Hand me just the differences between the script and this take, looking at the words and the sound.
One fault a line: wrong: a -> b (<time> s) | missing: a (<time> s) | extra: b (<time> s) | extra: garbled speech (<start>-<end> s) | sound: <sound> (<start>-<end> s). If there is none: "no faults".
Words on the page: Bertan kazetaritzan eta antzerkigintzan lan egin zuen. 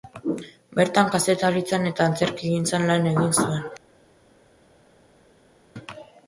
no faults